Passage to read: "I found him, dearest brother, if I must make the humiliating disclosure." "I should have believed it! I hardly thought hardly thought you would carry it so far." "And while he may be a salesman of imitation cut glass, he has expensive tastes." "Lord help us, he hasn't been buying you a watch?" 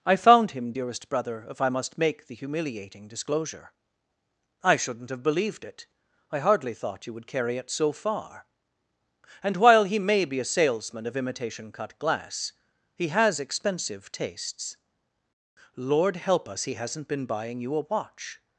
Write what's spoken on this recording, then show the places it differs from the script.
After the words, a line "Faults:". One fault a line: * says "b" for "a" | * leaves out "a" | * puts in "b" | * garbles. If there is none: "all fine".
"I found him, dearest brother, if I must make the humiliating disclosure." "I shouldn't have believed it! I hardly thought you would carry it so far." "And while he may be a salesman of imitation cut glass, he has expensive tastes." "Lord help us, he hasn't been buying you a watch?"
Faults:
* says "shouldn't" for "should"
* leaves out "hardly thought"